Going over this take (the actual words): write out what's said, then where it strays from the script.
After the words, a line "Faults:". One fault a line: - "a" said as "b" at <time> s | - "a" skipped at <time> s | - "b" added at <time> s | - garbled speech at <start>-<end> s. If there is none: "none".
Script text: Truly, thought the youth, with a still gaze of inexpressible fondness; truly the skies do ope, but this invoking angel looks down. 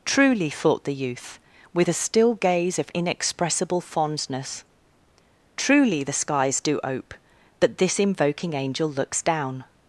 Truly, thought the youth, with a still gaze of inexpressible fondness; truly the skies do ope, but this invoking angel looks down.
Faults:
none